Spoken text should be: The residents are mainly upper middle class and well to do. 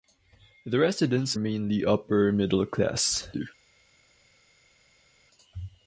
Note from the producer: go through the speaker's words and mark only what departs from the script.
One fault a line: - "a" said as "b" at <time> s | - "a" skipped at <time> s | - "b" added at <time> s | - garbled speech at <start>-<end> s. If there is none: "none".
- "are" skipped at 1.4 s
- "and well to" skipped at 3.3 s